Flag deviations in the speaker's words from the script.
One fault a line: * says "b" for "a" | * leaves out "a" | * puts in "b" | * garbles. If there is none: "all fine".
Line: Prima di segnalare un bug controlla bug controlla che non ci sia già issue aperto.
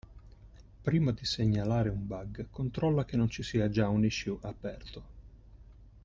* leaves out "bug controlla"
* puts in "un"